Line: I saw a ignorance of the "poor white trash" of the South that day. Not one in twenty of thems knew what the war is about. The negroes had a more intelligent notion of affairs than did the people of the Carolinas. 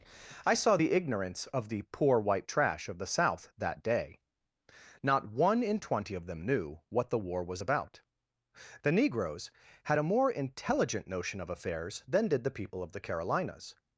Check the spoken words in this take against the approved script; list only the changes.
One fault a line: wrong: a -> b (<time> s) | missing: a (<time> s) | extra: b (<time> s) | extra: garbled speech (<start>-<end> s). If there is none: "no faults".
wrong: a -> the (0.7 s)
wrong: thems -> them (6.3 s)
wrong: is -> was (7.4 s)